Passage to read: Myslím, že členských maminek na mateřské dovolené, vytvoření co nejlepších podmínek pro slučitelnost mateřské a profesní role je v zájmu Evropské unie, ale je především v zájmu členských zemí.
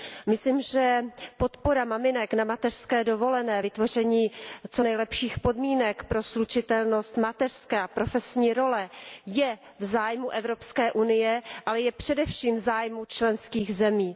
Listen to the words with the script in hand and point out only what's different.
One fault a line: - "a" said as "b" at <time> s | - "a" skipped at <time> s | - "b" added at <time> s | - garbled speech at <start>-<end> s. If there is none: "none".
- "členských" said as "podpora" at 1.4 s